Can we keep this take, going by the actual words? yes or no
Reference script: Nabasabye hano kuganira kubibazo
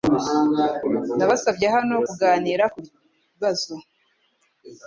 yes